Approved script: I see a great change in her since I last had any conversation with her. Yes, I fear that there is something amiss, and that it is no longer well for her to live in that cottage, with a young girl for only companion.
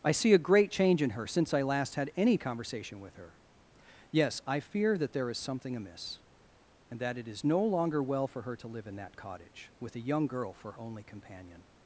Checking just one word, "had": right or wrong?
right